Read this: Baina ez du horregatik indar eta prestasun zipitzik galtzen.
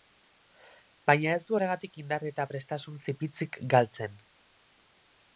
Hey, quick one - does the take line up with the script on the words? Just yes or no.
yes